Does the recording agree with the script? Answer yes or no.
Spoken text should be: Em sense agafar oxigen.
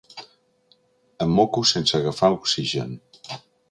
no